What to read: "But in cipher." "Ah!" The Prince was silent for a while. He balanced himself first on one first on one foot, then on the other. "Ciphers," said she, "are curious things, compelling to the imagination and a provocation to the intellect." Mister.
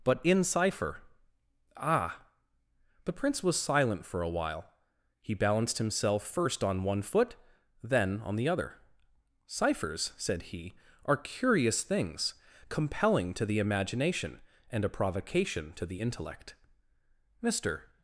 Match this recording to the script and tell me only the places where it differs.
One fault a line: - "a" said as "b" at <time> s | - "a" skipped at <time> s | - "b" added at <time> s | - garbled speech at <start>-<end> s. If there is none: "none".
- "first on one" skipped at 7.0 s
- "she" said as "he" at 10.4 s